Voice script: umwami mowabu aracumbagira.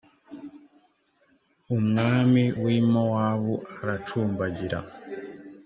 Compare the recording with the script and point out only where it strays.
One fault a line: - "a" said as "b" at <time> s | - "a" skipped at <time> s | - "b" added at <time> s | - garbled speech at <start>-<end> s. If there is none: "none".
- "wi" added at 2.6 s